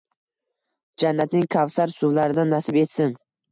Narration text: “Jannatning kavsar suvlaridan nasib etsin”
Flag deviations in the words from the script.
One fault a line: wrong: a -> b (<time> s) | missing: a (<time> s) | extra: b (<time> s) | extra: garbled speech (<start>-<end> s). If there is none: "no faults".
no faults